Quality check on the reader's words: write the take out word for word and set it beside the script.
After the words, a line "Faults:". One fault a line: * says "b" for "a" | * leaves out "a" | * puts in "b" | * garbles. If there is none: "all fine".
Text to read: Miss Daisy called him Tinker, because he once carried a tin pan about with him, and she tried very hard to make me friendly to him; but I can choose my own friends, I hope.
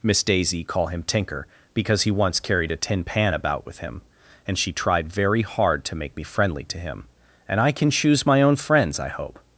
Miss Daisy call him Tinker, because he once carried a tin pan about with him, and she tried very hard to make me friendly to him; and I can choose my own friends, I hope.
Faults:
* says "call" for "called"
* says "and" for "but"